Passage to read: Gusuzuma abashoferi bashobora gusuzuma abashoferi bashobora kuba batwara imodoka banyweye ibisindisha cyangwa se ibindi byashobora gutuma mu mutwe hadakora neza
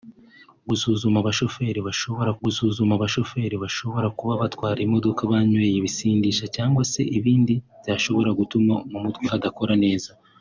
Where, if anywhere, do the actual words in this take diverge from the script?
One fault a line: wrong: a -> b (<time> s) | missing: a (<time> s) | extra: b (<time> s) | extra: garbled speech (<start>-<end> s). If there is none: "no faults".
no faults